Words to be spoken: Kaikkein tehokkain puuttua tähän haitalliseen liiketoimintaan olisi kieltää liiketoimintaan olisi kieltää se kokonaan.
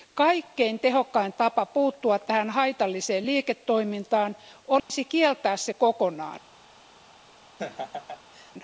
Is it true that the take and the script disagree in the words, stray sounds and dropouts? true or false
true